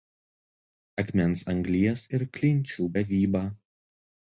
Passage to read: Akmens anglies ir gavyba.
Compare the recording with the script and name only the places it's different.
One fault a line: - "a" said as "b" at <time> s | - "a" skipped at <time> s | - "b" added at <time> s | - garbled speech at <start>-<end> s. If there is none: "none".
- "klinčių" added at 2.4 s